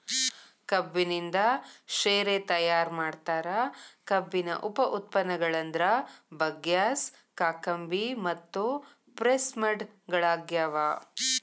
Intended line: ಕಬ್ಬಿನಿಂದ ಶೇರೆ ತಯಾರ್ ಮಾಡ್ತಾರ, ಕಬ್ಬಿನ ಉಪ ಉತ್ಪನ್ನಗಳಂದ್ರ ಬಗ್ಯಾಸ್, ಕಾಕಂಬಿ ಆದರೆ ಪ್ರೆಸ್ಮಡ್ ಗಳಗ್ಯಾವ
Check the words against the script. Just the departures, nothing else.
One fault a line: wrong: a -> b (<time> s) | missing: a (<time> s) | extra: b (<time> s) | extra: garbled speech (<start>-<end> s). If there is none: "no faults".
wrong: ಆದರೆ -> ಮತ್ತು (8.3 s)